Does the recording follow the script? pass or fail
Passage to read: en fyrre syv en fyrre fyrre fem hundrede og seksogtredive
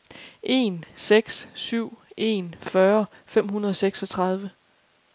fail